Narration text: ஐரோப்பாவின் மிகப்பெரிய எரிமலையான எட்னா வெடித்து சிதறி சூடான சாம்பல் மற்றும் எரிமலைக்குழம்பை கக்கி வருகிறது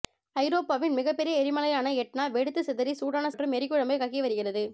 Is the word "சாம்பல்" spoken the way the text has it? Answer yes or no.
no